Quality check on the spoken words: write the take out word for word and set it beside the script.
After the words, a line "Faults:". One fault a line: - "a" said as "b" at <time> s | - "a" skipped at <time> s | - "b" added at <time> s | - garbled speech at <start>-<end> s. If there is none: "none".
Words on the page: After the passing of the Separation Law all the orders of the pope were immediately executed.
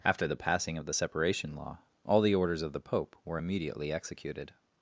After the passing of the Separation Law all the orders of the pope were immediately executed.
Faults:
none